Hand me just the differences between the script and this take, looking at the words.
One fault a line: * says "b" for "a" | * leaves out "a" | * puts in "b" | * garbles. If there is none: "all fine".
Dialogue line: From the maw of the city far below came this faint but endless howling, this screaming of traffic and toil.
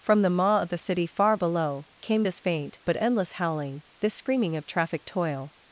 * leaves out "and"